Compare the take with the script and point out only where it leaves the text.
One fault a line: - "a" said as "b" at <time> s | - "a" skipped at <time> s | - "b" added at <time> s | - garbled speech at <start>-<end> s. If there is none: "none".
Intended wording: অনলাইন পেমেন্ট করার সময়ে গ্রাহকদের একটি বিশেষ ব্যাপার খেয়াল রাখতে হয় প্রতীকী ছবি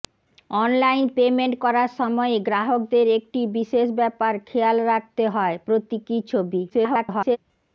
- garbled speech at 6.7-7.4 s